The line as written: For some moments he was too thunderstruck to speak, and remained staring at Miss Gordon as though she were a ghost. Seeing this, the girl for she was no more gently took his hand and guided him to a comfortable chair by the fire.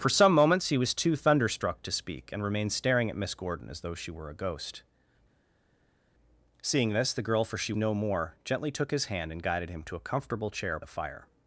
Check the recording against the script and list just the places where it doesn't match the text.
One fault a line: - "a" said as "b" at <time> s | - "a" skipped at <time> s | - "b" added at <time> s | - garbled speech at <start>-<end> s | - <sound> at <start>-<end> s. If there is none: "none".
- "was" skipped at 7.7 s
- "by" skipped at 10.8 s